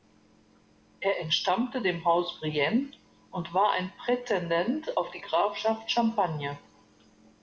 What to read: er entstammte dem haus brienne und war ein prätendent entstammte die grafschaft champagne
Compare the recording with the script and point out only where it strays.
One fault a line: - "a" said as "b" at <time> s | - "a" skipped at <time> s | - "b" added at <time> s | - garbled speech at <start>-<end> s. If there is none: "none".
- "entstammte" said as "auf" at 4.9 s